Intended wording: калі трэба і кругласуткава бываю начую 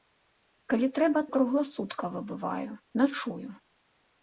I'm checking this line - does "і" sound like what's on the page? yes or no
yes